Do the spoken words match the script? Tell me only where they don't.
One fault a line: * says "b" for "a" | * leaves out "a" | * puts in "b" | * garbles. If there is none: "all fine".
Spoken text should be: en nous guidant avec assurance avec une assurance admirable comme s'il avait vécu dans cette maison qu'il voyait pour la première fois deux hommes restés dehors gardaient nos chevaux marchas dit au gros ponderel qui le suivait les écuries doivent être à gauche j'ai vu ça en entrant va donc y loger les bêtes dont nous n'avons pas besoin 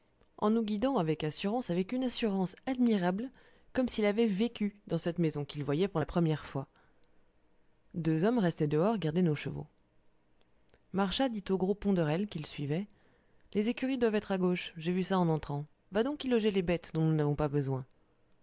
all fine